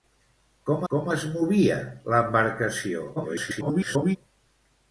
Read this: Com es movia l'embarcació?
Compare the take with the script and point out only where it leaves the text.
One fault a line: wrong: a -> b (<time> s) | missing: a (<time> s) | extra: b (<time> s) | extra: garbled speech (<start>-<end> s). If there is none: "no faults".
extra: com (0.9 s)
extra: garbled speech (3.2-4.2 s)